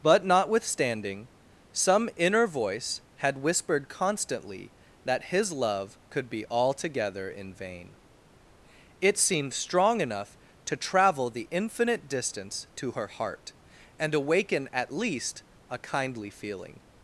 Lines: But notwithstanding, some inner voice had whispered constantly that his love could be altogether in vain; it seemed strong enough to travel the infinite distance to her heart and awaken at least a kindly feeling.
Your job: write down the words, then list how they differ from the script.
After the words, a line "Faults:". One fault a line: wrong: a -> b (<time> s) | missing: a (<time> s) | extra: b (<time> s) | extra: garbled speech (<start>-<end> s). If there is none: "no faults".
But notwithstanding, some inner voice had whispered constantly that his love could be altogether in vain; it seemed strong enough to travel the infinite distance to her heart and awaken at least a kindly feeling.
Faults:
no faults